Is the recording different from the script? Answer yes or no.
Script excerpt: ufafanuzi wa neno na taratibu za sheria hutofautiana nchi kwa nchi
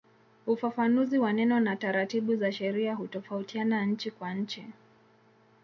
no